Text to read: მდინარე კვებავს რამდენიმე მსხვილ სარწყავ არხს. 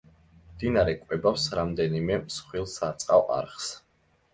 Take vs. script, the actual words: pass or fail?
pass